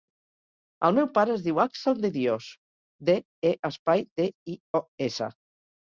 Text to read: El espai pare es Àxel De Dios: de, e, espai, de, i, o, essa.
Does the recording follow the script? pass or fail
fail